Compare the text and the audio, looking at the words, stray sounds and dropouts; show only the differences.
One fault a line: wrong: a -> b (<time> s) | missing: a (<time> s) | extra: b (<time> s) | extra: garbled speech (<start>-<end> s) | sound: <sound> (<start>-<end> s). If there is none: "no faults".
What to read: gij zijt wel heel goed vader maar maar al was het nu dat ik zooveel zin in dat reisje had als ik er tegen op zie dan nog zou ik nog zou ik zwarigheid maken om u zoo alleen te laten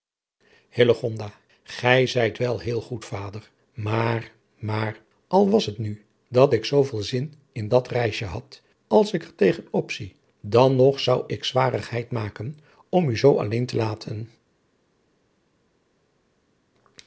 missing: nog zou ik (11.4 s)